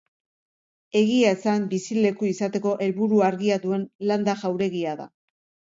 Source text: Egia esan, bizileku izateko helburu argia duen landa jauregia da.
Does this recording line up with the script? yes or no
yes